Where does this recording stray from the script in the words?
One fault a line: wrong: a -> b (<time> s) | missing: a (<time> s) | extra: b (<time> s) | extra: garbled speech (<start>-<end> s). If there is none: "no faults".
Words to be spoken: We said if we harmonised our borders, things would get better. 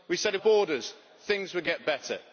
missing: we harmonised our (0.4 s)